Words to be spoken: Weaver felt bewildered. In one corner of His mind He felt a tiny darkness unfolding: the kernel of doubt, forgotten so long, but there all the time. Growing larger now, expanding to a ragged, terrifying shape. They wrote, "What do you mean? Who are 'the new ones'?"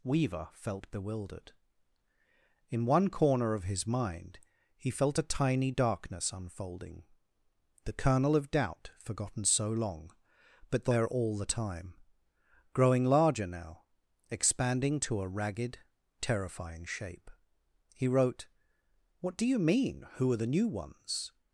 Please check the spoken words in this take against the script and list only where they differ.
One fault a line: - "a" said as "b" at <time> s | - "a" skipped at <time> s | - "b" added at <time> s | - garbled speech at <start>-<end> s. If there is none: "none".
- "They" said as "He" at 17.9 s